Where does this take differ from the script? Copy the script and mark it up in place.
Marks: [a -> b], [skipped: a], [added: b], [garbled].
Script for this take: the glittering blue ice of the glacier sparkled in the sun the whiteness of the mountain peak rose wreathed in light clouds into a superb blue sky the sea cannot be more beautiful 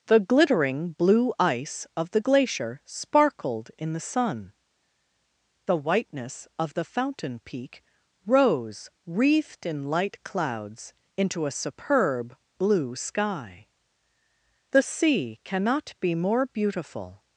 the glittering blue ice of the glacier sparkled in the sun the whiteness of the [mountain -> fountain] peak rose wreathed in light clouds into a superb blue sky the sea cannot be more beautiful